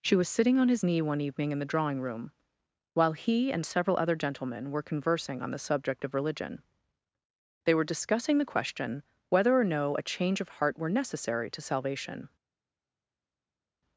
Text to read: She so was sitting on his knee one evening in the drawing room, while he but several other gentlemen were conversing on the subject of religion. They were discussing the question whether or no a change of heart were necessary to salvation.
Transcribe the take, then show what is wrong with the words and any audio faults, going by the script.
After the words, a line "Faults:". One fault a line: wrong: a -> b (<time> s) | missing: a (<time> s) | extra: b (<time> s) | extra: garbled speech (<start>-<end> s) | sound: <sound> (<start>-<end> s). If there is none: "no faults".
She was sitting on his knee one evening in the drawing room, while he and several other gentlemen were conversing on the subject of religion. They were discussing the question whether or no a change of heart were necessary to salvation.
Faults:
missing: so (0.1 s)
wrong: but -> and (3.5 s)